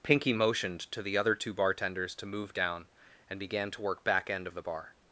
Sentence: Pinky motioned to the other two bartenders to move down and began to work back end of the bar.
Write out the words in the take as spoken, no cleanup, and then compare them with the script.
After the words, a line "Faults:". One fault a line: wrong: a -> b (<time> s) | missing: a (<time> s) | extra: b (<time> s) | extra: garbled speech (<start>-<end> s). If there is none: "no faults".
Pinky motioned to the other two bartenders to move down and began to work back end of the bar.
Faults:
no faults